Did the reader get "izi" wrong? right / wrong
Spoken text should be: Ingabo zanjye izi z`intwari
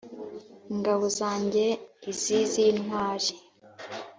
right